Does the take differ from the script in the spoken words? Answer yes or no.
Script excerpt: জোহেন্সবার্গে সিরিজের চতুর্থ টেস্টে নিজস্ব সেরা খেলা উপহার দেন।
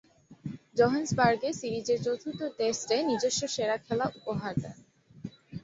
no